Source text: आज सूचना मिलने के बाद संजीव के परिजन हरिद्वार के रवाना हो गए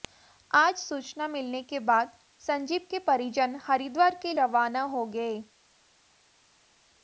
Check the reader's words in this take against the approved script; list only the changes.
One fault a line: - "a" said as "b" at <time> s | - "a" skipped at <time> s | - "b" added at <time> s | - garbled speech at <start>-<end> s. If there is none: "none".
none